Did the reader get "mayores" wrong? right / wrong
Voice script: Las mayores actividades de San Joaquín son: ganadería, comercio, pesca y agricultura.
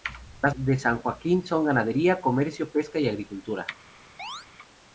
wrong